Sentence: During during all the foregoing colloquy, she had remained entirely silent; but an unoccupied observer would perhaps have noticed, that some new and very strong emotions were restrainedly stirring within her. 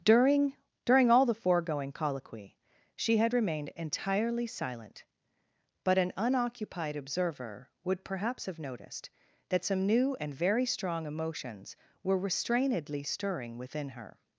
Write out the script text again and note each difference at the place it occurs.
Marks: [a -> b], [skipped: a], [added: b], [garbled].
During during all the foregoing colloquy, she had remained entirely silent; but an unoccupied observer would perhaps have noticed, that some new and very strong emotions were restrainedly stirring within her.